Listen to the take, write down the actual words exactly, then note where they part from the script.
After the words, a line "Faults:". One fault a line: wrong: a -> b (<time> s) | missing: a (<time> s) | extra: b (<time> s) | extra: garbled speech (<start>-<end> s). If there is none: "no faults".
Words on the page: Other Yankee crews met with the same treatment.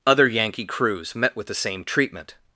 Other Yankee crews met with the same treatment.
Faults:
no faults